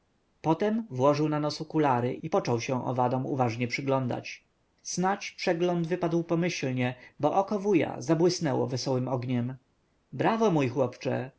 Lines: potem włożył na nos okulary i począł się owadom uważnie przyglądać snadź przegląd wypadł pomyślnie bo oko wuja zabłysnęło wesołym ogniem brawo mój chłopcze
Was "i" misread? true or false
false